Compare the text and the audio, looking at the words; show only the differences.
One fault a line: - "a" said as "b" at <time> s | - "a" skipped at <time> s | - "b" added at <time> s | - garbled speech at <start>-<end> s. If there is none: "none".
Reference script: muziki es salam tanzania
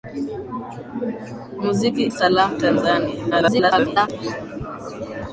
- "es" skipped at 2.0 s
- garbled speech at 3.3-4.1 s